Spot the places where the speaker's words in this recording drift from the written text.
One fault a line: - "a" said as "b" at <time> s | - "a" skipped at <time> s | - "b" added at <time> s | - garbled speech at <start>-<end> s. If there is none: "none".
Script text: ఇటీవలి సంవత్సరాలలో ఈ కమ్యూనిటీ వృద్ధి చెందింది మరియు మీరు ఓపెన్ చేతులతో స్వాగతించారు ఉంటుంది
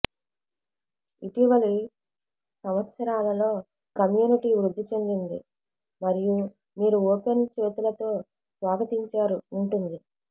- "ఈ" skipped at 3.5 s